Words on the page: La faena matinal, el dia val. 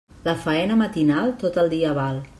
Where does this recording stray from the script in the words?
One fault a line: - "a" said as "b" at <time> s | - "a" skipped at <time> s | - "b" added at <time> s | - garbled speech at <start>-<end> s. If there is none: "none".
- "tot" added at 1.4 s